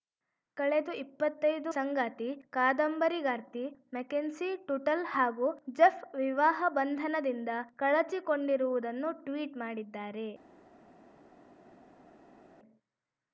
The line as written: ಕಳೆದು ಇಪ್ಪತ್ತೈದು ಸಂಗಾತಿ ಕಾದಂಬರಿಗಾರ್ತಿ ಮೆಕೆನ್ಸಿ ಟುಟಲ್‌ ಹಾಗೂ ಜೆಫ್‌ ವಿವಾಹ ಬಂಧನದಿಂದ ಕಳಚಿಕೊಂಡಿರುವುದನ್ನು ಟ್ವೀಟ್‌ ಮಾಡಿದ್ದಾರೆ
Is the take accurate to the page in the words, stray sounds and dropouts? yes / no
yes